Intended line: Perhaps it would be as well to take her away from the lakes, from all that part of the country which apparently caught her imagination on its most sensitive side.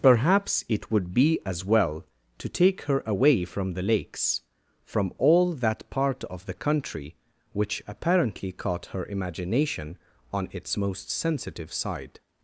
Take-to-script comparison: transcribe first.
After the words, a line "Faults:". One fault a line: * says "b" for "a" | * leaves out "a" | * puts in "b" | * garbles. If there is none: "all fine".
Perhaps it would be as well to take her away from the lakes, from all that part of the country which apparently caught her imagination on its most sensitive side.
Faults:
all fine